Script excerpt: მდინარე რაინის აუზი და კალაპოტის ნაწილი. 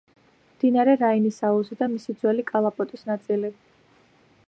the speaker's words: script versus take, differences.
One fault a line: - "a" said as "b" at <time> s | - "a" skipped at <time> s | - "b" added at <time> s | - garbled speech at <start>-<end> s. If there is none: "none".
- "მისი ძველი" added at 1.9 s